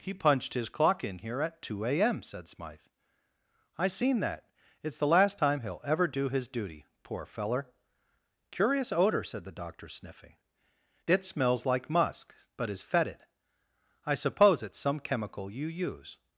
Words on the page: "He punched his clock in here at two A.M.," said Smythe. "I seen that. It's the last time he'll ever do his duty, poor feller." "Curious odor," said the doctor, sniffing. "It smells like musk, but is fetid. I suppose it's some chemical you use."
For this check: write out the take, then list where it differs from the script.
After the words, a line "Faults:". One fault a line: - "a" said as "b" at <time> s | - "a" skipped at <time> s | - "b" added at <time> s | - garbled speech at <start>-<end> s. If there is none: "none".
"He punched his clock in here at two A.M.," said Smythe. "I seen that. It's the last time he'll ever do his duty, poor feller." "Curious odor," said the doctor, sniffing. "It smells like musk, but is fetid. I suppose it's some chemical you use."
Faults:
none